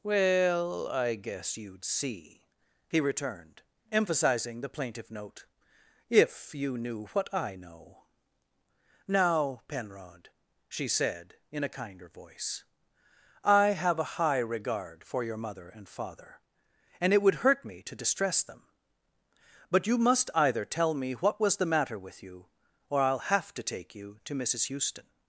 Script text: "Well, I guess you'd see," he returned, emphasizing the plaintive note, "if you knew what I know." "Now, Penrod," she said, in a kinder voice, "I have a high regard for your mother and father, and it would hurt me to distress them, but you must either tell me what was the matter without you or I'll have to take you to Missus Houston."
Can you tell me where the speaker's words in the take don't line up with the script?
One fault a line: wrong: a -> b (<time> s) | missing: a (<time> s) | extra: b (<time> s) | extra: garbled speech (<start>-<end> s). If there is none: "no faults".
wrong: without -> with (22.0 s)